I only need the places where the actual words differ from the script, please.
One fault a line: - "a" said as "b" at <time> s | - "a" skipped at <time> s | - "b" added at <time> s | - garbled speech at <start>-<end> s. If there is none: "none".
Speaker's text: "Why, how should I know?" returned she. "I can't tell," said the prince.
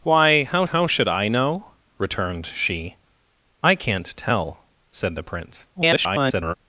- "how" added at 0.6 s
- garbled speech at 5.8-6.5 s